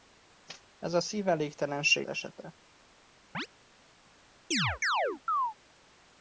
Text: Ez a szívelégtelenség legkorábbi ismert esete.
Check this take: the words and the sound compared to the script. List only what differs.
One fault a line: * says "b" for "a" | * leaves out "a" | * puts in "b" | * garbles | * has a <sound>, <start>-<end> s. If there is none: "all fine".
* leaves out "legkorábbi ismert"
* has a chirp, 3.3-3.5 s
* has a chirp, 4.5-5.5 s